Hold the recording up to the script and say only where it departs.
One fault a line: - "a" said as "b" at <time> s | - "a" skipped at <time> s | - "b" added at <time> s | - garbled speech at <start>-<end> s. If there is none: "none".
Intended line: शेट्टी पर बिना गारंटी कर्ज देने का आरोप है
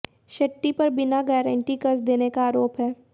none